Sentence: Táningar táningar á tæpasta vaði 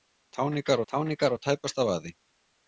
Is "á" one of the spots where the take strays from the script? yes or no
no